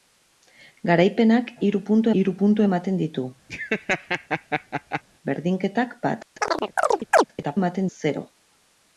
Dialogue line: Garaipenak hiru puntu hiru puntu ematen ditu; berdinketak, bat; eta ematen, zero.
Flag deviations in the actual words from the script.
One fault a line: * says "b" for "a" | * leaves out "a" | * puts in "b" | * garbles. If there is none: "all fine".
all fine